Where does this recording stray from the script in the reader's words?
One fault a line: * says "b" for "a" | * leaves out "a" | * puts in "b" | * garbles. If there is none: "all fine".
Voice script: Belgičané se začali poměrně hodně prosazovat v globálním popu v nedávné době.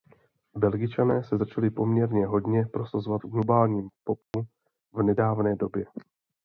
all fine